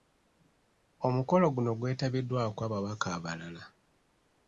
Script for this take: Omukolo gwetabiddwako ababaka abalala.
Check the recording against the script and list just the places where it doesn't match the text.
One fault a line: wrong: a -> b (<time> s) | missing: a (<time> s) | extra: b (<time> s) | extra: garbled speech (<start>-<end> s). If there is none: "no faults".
extra: guno (1.6 s)